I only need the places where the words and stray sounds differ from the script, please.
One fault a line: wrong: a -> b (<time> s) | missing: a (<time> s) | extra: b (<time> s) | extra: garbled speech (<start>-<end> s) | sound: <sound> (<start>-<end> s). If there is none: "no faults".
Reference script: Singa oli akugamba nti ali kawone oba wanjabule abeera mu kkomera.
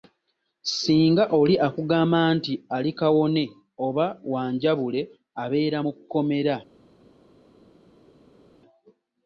no faults